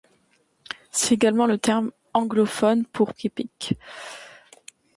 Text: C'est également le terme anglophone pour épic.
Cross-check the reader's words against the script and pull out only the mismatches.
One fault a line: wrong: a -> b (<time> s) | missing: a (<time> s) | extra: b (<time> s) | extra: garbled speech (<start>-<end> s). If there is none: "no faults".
no faults